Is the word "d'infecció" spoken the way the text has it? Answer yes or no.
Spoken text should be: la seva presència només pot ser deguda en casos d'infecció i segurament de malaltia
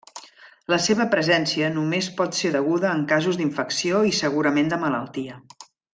yes